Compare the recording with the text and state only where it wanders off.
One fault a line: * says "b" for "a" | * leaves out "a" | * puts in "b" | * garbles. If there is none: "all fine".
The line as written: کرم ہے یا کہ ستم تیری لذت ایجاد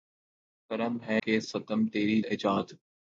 * leaves out "یا"
* leaves out "لذت"